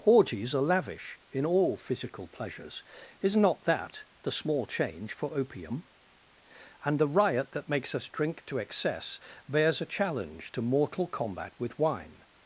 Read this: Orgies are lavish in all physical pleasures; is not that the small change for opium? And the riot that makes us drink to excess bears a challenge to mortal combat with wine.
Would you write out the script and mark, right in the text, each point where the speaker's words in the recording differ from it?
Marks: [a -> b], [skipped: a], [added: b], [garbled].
Orgies are lavish in all physical pleasures; is not that the small change for opium? And the riot that makes us drink to excess bears a challenge to mortal combat with wine.